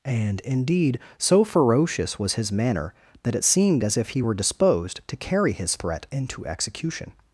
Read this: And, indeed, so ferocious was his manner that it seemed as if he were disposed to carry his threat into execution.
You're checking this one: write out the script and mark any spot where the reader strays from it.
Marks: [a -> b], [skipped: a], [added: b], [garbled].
And, indeed, so ferocious was his manner that it seemed as if he were disposed to carry his threat into execution.